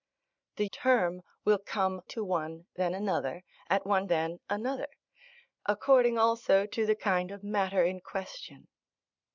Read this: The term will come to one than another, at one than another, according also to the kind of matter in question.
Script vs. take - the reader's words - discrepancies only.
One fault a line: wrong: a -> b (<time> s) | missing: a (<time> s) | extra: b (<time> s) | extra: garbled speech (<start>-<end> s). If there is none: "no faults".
no faults